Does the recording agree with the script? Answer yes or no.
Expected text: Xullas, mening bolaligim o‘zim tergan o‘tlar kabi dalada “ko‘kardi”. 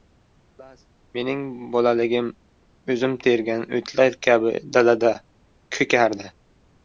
yes